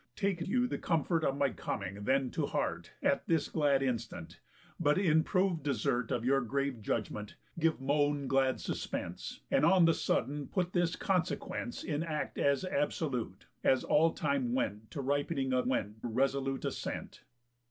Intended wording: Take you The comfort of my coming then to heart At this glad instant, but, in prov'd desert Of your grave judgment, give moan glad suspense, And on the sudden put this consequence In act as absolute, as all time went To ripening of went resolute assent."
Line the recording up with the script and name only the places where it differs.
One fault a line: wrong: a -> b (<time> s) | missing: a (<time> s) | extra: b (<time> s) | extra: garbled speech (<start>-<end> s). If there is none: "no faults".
no faults